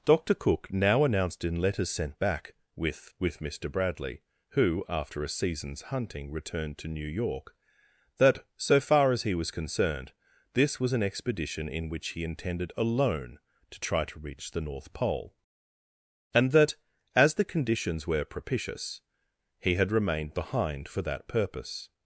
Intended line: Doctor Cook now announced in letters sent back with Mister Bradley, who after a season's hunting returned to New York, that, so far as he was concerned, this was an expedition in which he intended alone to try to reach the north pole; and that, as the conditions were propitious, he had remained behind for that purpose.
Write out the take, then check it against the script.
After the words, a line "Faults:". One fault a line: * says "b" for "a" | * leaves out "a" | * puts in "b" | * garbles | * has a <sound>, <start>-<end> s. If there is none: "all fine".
Doctor Cook now announced in letters sent back with with Mister Bradley, who after a season's hunting returned to New York, that, so far as he was concerned, this was an expedition in which he intended alone to try to reach the north pole; and that, as the conditions were propitious, he had remained behind for that purpose.
Faults:
* puts in "with"